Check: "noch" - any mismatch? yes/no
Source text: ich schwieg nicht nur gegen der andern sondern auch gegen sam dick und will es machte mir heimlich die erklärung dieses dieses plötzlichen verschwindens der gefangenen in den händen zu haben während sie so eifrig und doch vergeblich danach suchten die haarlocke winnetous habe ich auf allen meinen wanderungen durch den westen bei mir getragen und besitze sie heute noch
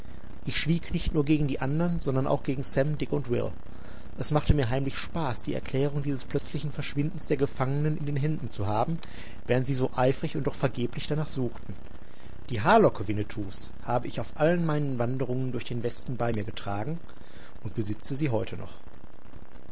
no